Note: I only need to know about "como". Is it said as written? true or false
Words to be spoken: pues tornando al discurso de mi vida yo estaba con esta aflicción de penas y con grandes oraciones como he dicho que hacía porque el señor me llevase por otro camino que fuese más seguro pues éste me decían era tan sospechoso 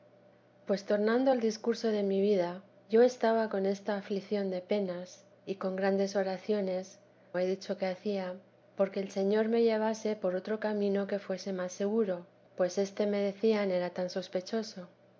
false